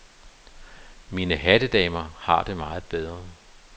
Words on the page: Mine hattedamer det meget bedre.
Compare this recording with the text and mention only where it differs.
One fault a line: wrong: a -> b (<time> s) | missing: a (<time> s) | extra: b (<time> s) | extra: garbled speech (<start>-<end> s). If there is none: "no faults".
extra: har (2.2 s)